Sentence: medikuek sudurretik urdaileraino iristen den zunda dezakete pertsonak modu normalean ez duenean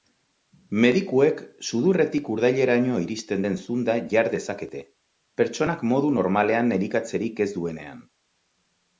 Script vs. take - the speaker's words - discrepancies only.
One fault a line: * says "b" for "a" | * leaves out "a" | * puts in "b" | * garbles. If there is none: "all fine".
* puts in "jar"
* puts in "elikatzerik"